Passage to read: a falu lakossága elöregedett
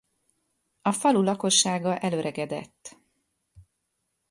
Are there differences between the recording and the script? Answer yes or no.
no